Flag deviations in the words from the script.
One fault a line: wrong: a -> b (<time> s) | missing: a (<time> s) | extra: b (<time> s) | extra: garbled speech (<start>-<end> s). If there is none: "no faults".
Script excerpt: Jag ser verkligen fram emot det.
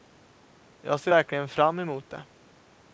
no faults